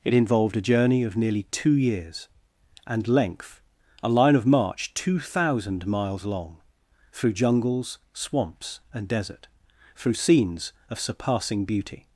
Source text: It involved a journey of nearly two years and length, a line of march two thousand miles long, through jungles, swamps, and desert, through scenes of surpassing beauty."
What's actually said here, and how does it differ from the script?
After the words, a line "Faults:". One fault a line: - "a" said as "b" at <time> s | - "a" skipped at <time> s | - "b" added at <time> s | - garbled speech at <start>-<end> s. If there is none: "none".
It involved a journey of nearly two years and length, a line of march two thousand miles long, through jungles, swamps, and desert, through scenes of surpassing beauty."
Faults:
none